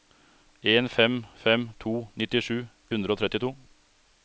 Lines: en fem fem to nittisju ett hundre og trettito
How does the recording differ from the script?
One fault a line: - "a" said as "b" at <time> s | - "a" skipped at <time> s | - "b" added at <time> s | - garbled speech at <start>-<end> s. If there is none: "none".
- "ett" skipped at 2.6 s